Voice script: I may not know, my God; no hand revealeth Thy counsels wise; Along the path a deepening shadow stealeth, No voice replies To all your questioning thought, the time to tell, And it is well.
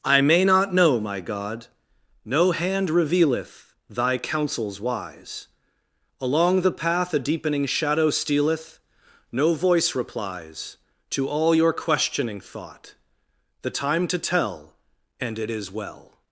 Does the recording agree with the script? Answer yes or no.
yes